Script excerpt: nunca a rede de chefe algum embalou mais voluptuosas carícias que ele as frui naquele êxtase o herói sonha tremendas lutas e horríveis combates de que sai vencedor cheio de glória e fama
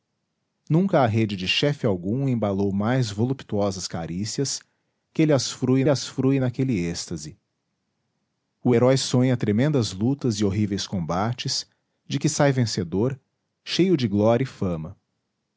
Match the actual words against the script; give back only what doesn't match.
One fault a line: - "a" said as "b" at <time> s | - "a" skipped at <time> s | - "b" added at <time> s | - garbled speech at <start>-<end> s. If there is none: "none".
- "as frui" added at 5.9 s